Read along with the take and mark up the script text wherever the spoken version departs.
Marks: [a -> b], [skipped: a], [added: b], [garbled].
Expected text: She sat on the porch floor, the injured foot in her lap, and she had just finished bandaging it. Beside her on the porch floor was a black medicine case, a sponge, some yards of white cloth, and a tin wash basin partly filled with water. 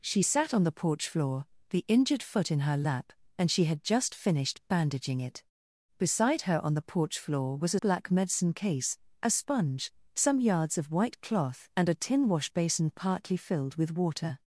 She sat on the porch floor, the injured foot in her lap, and she had just finished bandaging it. Beside her on the porch floor was a black medicine case, a sponge, some yards of white cloth, and a tin wash basin partly filled with water.